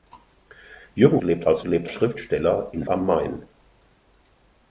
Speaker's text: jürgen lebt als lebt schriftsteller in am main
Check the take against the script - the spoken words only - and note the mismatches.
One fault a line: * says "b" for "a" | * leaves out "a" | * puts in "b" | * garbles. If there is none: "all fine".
all fine